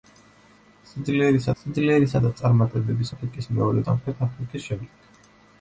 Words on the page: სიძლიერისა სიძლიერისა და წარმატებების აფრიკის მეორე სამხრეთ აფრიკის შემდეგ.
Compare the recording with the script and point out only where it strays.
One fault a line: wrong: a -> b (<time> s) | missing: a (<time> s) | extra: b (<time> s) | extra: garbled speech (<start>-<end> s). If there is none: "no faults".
no faults